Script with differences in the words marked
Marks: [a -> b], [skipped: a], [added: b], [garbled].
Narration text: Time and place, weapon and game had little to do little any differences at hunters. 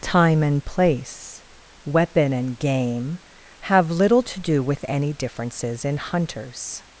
Time and place, weapon and game [had -> have] little to do [little -> with] any differences [at -> in] hunters.